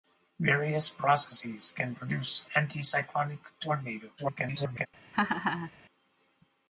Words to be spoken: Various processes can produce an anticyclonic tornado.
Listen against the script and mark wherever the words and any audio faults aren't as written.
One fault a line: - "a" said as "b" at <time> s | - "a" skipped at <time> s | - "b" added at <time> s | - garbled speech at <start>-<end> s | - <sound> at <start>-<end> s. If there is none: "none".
- "an" skipped at 2.5 s
- garbled speech at 4.2-4.9 s
- laugh at 5.1-5.7 s